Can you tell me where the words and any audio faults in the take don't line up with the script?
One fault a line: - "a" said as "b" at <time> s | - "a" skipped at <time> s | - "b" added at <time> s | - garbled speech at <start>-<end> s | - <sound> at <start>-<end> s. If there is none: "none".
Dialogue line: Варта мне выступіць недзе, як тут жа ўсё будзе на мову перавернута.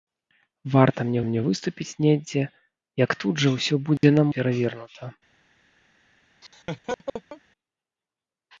- "мне" added at 1.3 s
- dropout at 4.0-4.0 s
- "мову" skipped at 4.3 s
- laugh at 6.4-7.4 s